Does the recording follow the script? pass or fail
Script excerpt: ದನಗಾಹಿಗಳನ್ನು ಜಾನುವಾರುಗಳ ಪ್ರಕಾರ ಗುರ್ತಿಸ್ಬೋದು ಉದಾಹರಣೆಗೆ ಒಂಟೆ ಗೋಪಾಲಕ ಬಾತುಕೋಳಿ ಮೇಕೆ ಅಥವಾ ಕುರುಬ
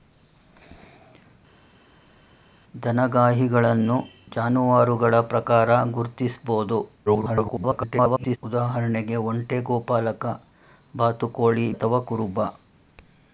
fail